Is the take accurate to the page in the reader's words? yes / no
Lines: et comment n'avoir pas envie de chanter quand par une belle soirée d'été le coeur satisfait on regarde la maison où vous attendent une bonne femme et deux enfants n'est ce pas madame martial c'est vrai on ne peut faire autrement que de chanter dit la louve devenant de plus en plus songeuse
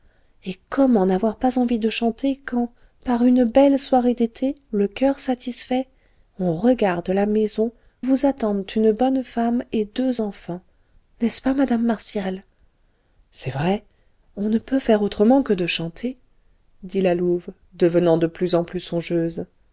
no